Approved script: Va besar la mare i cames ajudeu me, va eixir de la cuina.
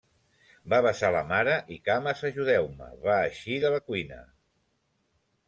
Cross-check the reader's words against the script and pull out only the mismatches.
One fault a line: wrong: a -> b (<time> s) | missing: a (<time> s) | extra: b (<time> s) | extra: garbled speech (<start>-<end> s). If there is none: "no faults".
no faults